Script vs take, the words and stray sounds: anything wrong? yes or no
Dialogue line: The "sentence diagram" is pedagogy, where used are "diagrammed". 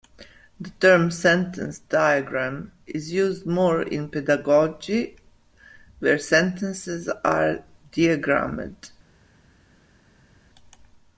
yes